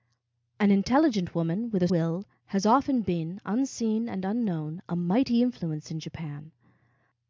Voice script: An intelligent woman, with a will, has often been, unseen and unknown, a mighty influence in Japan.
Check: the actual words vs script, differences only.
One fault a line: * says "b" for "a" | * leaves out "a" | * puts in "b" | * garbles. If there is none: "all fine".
all fine